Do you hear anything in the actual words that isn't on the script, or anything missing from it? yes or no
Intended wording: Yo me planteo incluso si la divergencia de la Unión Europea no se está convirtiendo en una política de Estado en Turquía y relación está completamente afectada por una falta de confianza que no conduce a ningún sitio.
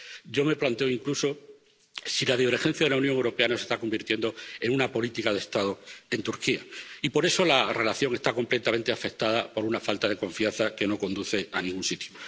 yes